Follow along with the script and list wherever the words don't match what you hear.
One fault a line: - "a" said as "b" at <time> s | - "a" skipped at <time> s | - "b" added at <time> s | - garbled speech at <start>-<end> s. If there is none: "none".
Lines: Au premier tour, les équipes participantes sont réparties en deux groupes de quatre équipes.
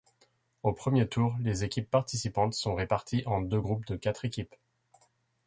none